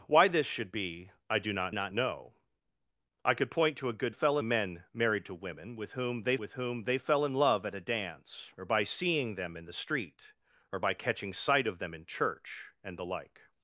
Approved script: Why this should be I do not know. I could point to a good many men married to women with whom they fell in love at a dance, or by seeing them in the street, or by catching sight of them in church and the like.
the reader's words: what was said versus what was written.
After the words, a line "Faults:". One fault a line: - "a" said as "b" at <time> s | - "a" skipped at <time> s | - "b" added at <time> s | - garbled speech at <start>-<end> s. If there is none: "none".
Why this should be I do not not know. I could point to a good fell men married to women with whom they with whom they fell in love at a dance, or by seeing them in the street, or by catching sight of them in church and the like.
Faults:
- "not" added at 1.7 s
- "many" said as "fell" at 4.1 s
- "with whom they" added at 6.4 s